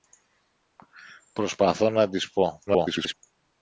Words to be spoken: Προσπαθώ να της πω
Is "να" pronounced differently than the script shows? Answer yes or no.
no